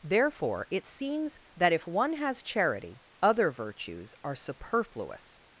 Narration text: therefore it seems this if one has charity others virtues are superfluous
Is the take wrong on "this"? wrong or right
wrong